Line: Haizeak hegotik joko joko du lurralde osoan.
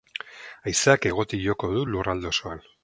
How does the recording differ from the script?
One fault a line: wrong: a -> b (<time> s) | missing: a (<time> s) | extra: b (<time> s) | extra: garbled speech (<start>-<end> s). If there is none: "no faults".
missing: joko (1.7 s)